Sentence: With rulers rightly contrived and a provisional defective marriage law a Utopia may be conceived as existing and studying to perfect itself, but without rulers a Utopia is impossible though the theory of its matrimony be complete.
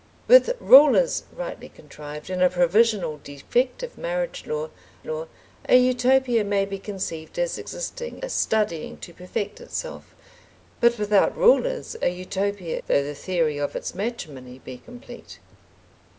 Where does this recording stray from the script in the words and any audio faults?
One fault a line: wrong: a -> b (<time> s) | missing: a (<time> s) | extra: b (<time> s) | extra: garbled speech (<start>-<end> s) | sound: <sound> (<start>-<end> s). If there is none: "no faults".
extra: law (5.1 s)
missing: and (8.2 s)
missing: is impossible (12.8 s)